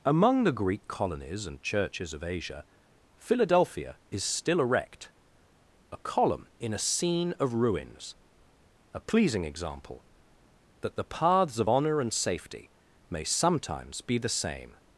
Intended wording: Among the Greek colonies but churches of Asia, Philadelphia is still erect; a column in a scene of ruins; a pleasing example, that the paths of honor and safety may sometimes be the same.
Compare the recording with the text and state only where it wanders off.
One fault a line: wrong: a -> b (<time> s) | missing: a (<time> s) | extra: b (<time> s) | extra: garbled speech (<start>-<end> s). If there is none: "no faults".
wrong: but -> and (1.4 s)